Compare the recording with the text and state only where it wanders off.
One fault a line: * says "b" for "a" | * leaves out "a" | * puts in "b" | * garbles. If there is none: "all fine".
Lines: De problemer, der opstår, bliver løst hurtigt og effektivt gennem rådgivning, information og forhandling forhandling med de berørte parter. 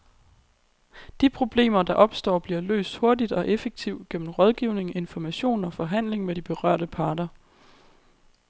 * leaves out "forhandling"